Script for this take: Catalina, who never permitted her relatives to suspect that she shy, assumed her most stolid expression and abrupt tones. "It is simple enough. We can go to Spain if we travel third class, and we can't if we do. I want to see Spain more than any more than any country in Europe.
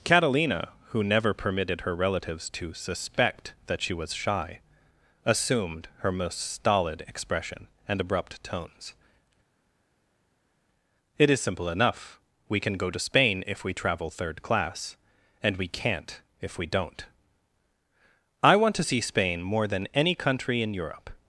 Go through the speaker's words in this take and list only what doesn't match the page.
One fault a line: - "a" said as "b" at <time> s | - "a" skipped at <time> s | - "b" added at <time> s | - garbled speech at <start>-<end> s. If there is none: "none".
- "was" added at 3.9 s
- "do" said as "don't" at 16.7 s
- "more than any" skipped at 20.1 s